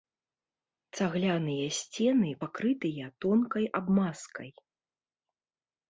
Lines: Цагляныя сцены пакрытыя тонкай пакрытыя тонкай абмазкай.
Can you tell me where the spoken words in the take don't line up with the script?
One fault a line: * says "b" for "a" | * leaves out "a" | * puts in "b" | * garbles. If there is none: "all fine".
* leaves out "пакрытыя тонкай"